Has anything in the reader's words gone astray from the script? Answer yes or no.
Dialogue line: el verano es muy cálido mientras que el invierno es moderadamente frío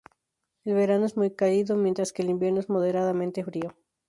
no